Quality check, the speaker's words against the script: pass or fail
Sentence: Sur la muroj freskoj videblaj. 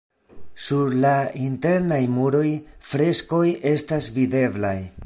fail